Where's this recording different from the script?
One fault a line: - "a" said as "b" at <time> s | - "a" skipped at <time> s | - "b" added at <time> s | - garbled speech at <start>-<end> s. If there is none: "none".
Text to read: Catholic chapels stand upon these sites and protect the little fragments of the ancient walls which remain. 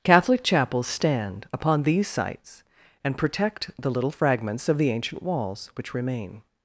none